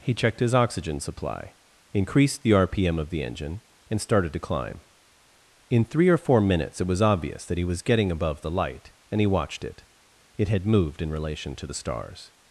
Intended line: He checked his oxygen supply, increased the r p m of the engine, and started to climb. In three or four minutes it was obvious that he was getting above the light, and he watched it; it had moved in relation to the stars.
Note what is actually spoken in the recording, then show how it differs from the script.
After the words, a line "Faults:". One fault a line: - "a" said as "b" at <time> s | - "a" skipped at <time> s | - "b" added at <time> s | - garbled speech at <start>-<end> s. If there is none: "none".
He checked his oxygen supply, increased the r p m of the engine, and started to climb. In three or four minutes it was obvious that he was getting above the light, and he watched it; it had moved in relation to the stars.
Faults:
none